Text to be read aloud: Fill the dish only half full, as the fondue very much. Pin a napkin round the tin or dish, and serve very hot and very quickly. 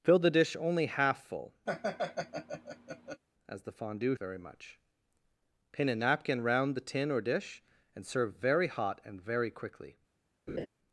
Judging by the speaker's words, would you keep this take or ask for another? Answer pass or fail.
pass